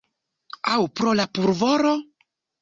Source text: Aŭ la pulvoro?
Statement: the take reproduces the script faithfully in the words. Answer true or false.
false